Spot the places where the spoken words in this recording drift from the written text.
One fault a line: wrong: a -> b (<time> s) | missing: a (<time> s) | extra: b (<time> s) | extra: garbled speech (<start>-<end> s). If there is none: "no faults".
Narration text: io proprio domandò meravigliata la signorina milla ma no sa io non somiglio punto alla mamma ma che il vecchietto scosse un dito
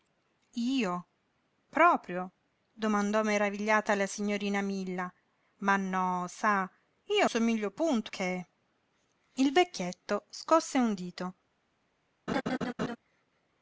missing: non (7.3 s)
missing: alla mamma ma (8.1 s)